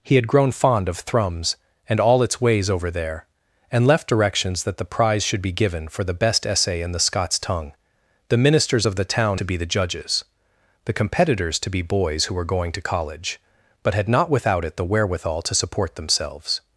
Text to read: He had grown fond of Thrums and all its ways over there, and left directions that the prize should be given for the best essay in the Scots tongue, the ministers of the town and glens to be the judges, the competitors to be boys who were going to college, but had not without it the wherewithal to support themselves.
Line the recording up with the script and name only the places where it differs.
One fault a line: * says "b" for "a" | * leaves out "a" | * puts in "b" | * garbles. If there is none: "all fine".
* leaves out "and glens"